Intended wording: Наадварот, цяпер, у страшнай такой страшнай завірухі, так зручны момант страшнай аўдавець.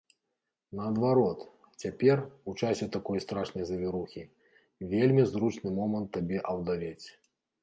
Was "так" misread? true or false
true